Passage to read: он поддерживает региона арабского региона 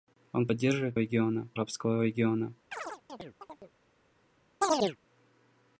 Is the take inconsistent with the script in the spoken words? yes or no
no